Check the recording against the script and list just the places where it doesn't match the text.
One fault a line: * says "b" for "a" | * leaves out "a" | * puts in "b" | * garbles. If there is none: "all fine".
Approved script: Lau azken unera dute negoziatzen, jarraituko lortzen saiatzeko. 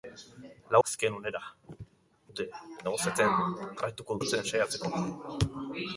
all fine